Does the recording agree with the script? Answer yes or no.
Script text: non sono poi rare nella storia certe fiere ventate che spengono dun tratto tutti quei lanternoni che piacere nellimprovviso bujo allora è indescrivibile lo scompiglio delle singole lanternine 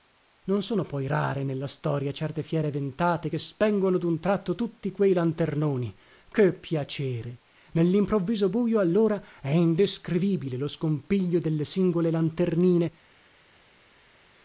yes